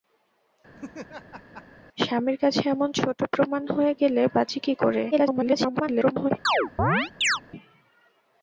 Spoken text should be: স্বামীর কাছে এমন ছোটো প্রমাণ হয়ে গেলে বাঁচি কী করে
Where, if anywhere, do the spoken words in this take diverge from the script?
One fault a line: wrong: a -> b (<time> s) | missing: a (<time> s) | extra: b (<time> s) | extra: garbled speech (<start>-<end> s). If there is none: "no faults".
extra: garbled speech (5.1-6.3 s)